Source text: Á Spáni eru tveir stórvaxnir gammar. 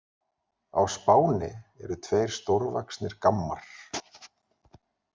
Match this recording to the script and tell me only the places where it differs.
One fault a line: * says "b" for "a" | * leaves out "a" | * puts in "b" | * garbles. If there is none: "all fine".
all fine